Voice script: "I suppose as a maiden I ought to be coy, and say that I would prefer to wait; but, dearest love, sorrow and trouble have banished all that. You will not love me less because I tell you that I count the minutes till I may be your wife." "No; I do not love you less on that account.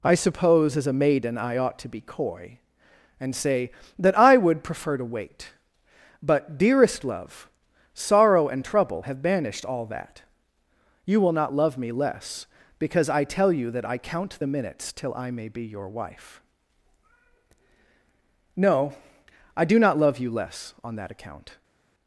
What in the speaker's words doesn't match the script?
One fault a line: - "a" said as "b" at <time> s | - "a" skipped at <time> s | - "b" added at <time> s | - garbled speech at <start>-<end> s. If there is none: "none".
none